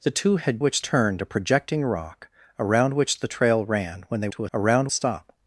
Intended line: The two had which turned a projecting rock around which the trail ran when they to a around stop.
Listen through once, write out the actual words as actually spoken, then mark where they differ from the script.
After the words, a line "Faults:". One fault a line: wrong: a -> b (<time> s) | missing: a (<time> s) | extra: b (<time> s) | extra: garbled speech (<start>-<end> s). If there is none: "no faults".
The two had which turned a projecting rock around which the trail ran when they to a around stop.
Faults:
no faults